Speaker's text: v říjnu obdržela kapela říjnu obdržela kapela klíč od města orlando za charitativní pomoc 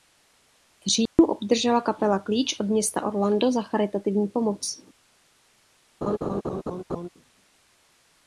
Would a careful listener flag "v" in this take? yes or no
no